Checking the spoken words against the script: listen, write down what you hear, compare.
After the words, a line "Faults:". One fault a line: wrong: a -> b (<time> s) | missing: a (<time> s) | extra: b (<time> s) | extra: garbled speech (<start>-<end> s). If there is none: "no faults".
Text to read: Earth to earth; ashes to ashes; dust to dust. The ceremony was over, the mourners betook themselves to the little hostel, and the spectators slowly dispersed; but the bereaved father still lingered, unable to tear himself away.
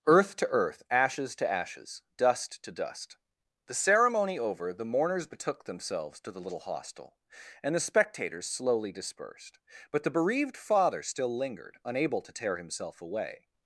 Earth to earth; ashes to ashes; dust to dust. The ceremony over, the mourners betook themselves to the little hostel, and the spectators slowly dispersed; but the bereaved father still lingered, unable to tear himself away.
Faults:
missing: was (4.4 s)